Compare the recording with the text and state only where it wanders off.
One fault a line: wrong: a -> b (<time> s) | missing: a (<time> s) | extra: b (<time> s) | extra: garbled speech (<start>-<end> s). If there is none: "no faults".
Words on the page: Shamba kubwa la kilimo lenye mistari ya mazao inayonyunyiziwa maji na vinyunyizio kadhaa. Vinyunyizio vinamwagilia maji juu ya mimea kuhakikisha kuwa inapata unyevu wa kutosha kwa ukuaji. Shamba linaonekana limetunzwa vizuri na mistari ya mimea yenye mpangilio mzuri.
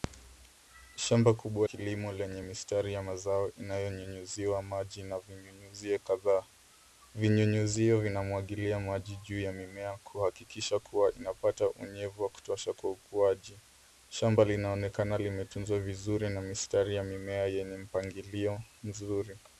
missing: la (1.7 s)